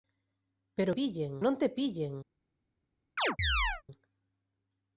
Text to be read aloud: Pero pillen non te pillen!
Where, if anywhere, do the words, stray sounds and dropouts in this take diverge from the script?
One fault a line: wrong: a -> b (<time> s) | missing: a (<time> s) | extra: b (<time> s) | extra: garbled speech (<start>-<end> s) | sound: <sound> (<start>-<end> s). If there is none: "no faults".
sound: chirp (3.2-3.8 s)